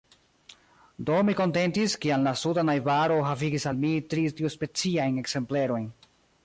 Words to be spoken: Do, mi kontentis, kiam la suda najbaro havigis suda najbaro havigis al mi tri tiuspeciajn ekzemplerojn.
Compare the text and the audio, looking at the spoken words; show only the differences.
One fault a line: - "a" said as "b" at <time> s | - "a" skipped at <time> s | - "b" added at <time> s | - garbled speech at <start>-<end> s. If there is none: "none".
- "suda najbaro havigis" skipped at 3.7 s